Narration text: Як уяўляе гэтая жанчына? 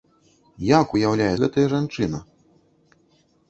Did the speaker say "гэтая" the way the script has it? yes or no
yes